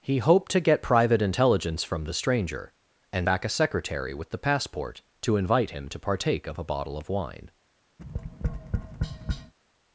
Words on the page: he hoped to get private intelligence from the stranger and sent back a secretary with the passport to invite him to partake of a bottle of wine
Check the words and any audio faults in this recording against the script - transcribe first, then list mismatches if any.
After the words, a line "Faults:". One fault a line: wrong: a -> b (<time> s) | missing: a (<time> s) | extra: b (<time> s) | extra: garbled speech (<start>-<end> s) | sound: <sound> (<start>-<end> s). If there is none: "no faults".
he hoped to get private intelligence from the stranger and back a secretary with the passport to invite him to partake of a bottle of wine
Faults:
missing: sent (3.3 s)
sound: tap (8.0-9.5 s)